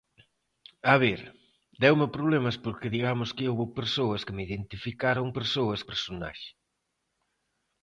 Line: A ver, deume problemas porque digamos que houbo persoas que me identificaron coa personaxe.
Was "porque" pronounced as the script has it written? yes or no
yes